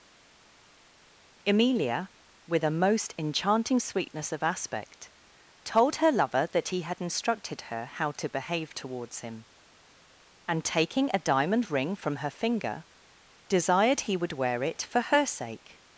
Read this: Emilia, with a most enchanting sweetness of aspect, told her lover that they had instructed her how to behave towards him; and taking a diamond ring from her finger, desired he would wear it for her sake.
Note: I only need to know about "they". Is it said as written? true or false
false